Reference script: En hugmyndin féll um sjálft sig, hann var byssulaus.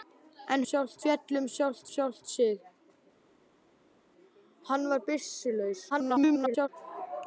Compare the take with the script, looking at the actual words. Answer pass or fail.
fail